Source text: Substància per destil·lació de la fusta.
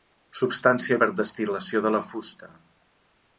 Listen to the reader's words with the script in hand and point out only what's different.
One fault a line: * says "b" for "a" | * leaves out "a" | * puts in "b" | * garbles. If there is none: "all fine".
all fine